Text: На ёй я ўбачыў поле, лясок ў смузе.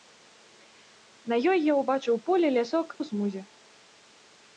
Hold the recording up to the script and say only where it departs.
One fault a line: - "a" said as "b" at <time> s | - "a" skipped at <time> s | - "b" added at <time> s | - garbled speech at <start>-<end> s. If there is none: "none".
none